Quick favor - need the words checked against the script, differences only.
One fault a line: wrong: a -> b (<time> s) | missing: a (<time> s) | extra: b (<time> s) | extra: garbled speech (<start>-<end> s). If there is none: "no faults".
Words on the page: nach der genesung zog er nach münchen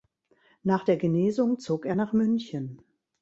no faults